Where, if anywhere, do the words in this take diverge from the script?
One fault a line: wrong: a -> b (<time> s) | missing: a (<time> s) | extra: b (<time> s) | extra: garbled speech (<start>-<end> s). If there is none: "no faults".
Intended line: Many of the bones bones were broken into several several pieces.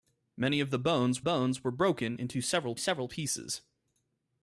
no faults